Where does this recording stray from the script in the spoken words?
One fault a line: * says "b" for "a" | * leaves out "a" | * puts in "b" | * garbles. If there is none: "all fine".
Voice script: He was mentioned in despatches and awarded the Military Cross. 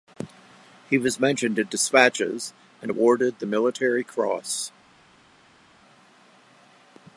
all fine